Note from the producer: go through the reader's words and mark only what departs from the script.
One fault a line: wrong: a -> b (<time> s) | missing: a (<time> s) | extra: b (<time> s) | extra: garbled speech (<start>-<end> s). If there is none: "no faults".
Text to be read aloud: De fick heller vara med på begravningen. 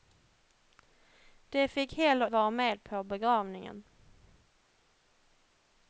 no faults